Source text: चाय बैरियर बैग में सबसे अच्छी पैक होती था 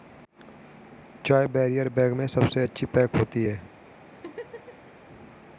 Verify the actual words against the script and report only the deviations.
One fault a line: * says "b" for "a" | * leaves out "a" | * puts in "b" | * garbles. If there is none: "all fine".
* says "है" for "था"